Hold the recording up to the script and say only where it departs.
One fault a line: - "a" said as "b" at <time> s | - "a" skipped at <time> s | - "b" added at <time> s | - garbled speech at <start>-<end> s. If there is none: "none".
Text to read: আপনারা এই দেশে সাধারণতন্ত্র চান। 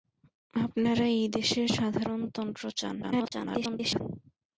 - garbled speech at 3.0-4.0 s